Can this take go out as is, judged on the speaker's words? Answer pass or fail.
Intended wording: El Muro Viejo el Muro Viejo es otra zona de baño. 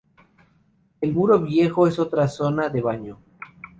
fail